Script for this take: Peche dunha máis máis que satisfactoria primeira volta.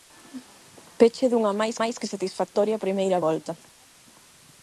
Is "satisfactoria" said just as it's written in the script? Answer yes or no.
yes